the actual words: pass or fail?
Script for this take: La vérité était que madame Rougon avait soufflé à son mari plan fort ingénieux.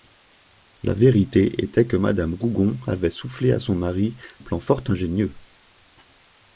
pass